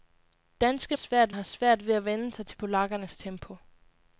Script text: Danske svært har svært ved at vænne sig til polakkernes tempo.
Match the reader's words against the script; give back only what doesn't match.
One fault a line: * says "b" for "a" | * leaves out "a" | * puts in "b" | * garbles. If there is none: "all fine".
all fine